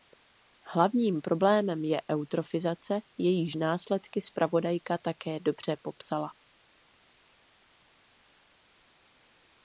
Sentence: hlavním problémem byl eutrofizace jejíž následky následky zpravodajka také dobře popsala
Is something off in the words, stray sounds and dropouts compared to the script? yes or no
yes